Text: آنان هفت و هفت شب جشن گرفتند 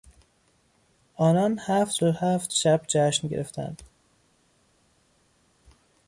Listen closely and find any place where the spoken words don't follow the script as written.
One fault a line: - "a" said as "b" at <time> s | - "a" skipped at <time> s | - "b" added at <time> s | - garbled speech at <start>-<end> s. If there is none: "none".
none